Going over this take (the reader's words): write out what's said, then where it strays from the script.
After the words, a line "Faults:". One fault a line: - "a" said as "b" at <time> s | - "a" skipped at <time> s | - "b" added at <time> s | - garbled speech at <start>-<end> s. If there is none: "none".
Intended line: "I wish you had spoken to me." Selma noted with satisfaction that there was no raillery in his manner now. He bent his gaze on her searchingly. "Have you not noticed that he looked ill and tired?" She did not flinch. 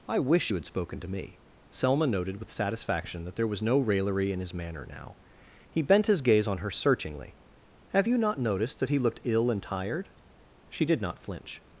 "I wish you had spoken to me." Selma noted with satisfaction that there was no raillery in his manner now. He bent his gaze on her searchingly. "Have you not noticed that he looked ill and tired?" She did not flinch.
Faults:
none